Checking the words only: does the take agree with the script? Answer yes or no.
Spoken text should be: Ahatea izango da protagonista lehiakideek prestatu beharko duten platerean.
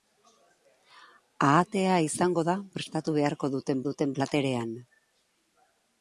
no